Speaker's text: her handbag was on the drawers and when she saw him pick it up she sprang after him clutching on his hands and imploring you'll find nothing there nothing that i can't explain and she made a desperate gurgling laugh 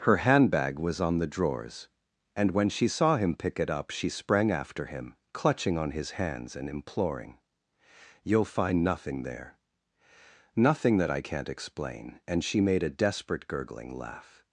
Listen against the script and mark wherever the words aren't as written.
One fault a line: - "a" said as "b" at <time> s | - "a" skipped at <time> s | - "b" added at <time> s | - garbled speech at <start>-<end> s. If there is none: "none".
none